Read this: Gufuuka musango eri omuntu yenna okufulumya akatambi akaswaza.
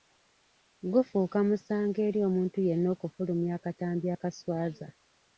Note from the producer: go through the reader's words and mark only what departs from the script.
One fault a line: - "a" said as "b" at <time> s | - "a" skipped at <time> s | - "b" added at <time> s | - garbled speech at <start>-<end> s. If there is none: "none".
none